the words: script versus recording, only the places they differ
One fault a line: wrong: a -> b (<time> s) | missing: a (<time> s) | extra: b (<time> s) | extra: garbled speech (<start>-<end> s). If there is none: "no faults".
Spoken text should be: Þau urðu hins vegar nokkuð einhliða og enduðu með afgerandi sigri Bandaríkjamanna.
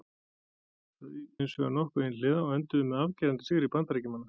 missing: urðu (1.1 s)